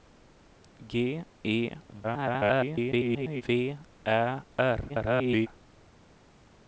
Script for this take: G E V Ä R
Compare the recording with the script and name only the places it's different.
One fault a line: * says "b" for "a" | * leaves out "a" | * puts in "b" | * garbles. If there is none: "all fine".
* garbles
* garbles